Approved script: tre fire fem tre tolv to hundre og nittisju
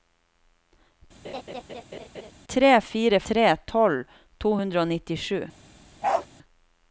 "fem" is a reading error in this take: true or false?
true